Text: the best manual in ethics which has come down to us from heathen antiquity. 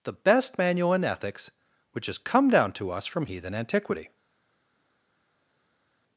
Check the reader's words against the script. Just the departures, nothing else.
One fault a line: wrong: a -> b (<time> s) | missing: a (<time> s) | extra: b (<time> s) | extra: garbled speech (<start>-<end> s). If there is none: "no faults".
no faults